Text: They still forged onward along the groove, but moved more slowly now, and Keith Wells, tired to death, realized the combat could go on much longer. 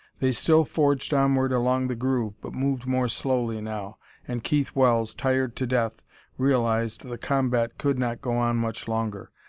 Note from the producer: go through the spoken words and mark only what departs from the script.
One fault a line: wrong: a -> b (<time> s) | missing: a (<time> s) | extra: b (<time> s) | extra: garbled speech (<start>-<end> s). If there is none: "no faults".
extra: not (8.0 s)